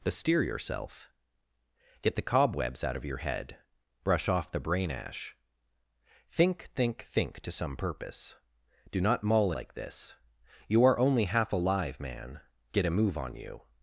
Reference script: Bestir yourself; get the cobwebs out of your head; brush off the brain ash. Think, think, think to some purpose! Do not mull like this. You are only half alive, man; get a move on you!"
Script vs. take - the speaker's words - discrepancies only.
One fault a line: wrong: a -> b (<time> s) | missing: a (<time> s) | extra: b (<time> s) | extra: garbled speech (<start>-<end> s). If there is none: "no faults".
no faults